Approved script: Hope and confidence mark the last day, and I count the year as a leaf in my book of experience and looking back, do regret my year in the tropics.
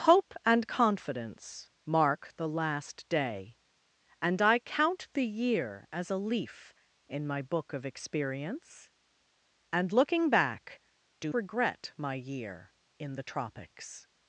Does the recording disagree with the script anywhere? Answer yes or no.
no